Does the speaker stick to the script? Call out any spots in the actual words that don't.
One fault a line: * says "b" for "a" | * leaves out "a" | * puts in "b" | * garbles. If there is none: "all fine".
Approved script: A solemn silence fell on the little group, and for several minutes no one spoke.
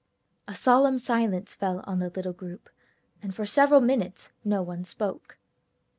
all fine